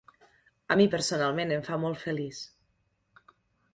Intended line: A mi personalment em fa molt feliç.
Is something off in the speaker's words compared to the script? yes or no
no